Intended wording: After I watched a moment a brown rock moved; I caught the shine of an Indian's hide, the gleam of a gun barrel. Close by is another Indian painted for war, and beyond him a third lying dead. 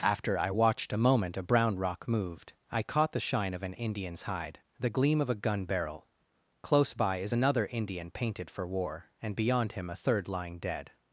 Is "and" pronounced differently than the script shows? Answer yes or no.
no